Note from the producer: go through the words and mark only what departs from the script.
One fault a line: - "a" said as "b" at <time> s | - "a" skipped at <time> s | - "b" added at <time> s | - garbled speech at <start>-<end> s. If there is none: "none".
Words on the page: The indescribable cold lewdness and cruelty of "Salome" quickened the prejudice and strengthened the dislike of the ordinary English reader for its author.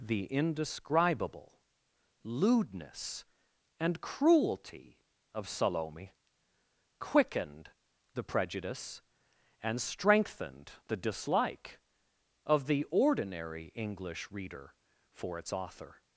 - "cold" skipped at 1.6 s